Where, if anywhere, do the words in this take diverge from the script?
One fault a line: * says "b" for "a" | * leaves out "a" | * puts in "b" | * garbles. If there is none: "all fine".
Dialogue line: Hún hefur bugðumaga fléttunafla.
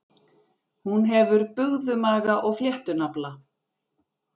* puts in "og"